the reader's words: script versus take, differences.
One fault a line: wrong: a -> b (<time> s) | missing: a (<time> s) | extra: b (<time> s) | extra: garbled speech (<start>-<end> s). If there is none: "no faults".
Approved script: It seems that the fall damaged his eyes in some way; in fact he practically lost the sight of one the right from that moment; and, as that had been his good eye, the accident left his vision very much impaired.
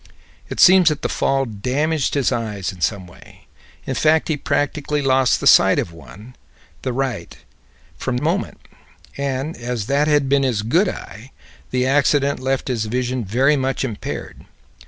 missing: that (8.2 s)